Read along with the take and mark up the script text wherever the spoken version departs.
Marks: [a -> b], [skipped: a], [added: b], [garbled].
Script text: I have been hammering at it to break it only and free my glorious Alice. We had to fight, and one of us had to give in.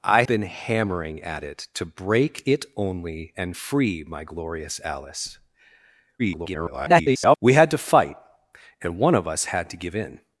I [skipped: have] been hammering at it to break it only and free my glorious Alice. [garbled] We had to fight, and one of us had to give in.